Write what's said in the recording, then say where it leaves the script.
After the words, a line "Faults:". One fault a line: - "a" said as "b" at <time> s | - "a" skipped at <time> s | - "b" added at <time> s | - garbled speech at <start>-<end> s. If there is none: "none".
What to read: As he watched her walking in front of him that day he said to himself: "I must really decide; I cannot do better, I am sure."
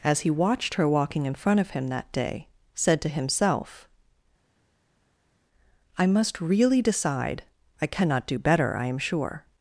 As he watched her walking in front of him that day said to himself: "I must really decide; I cannot do better, I am sure."
Faults:
- "he" skipped at 2.5 s